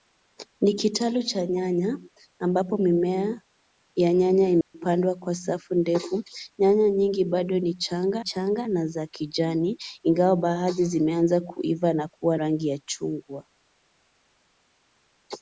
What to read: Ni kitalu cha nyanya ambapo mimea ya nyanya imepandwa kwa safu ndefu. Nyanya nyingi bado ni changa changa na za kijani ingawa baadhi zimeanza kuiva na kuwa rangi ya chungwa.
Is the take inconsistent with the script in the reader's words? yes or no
no